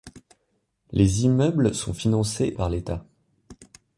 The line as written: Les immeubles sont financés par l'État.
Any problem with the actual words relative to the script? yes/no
no